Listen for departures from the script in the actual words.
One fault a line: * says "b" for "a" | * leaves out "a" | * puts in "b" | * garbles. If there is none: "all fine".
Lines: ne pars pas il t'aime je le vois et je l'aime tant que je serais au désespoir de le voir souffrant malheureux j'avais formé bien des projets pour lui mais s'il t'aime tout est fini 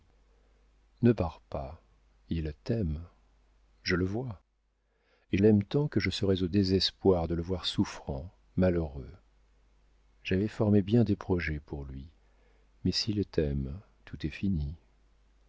* leaves out "je"